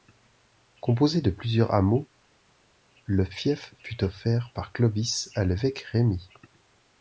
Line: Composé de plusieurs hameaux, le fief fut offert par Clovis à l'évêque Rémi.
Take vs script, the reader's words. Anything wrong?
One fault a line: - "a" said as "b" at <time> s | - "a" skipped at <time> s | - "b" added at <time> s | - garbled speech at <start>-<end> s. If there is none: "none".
none